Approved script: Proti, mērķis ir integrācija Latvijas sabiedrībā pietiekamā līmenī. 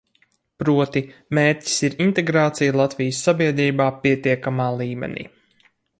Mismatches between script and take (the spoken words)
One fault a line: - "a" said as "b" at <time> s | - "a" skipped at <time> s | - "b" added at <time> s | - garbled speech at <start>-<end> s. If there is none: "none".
none